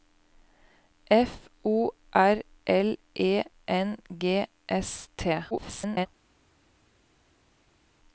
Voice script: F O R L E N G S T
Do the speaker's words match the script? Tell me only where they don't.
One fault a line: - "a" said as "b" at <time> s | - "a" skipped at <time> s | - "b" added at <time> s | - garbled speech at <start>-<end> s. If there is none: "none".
- garbled speech at 5.5-6.1 s